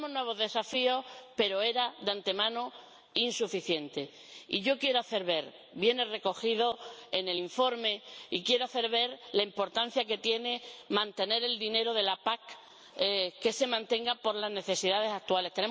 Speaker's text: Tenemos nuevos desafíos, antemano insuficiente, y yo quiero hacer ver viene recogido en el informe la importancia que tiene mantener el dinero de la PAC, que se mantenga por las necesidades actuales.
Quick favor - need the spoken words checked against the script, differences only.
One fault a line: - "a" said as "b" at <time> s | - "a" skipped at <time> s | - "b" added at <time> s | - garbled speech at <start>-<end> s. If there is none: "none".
- "pero era de" added at 1.4 s